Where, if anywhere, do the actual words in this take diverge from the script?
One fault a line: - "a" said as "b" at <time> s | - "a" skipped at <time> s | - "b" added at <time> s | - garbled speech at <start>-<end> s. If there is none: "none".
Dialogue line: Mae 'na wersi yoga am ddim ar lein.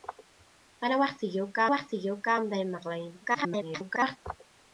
- "wersi yoga" added at 1.7 s
- garbled speech at 3.2-4.2 s